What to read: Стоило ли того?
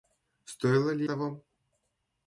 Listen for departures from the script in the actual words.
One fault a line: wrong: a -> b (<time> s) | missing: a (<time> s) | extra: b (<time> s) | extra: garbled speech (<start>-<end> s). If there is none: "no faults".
no faults